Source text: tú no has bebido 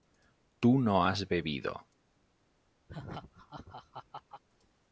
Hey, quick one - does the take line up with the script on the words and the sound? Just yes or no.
no